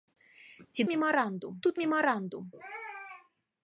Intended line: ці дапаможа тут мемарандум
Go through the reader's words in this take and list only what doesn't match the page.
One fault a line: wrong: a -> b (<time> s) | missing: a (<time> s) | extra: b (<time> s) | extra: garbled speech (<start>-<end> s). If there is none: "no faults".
wrong: дапаможа -> мемарандум (0.9 s)